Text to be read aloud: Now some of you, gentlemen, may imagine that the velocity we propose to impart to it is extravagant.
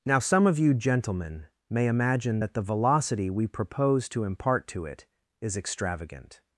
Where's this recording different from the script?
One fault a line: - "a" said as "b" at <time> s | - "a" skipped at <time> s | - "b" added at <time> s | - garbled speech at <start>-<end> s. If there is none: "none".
none